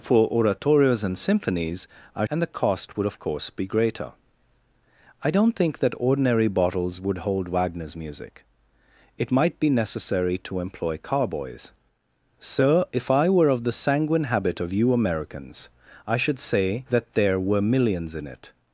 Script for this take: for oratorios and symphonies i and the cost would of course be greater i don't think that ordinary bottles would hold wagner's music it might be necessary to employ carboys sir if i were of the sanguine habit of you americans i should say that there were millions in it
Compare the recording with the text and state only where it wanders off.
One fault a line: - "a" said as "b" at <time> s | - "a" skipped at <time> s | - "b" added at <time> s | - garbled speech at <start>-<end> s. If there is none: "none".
none